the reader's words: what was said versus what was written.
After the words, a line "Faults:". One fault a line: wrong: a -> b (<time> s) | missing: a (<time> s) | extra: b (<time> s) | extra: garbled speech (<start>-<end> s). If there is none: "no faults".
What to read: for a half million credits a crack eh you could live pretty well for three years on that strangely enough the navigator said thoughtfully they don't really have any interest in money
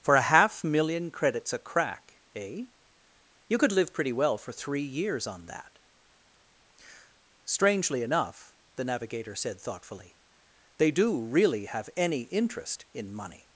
for a half million credits a crack eh you could live pretty well for three years on that strangely enough the navigator said thoughtfully they do really have any interest in money
Faults:
wrong: don't -> do (10.9 s)